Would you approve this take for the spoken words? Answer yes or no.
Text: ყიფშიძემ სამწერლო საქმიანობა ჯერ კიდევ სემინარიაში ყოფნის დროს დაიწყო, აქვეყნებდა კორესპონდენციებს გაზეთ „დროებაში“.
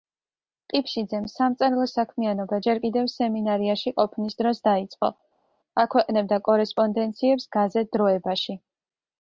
yes